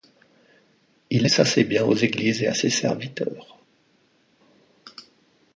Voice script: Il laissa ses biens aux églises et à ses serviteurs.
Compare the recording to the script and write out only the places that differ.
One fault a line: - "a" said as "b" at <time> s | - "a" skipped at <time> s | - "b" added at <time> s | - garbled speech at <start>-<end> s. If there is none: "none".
none